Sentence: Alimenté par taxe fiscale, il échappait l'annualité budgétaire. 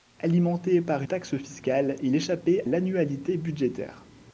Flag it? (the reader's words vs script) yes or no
no